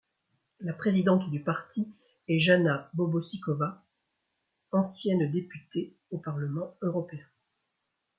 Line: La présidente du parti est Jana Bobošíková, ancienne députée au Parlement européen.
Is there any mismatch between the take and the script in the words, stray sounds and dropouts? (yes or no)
no